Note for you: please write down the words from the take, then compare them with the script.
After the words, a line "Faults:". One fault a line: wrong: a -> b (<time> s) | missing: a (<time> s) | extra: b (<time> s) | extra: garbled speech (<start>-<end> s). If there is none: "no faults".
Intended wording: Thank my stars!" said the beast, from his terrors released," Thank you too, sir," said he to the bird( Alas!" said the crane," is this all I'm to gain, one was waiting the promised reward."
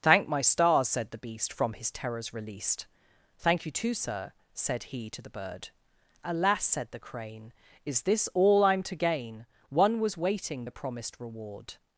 Thank my stars!" said the beast, from his terrors released," Thank you too, sir," said he to the bird( Alas!" said the crane," is this all I'm to gain, one was waiting the promised reward."
Faults:
no faults